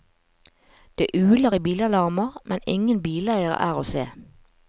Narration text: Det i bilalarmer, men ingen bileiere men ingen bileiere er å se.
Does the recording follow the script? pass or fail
fail